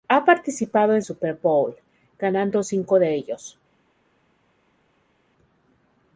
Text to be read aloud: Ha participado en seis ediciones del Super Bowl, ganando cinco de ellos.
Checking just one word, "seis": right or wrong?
wrong